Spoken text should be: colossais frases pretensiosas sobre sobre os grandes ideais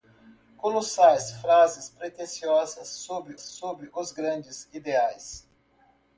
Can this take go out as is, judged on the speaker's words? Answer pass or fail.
pass